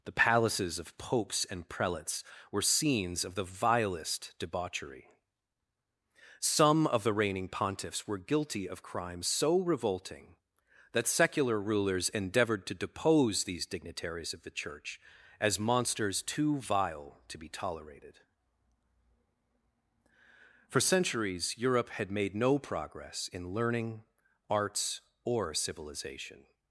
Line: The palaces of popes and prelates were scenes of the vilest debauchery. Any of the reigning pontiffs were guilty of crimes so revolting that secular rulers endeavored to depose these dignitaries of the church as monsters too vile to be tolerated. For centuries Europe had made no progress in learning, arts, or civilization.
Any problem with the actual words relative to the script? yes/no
yes